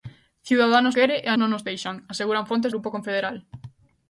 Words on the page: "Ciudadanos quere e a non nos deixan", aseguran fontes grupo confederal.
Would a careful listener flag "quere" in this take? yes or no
no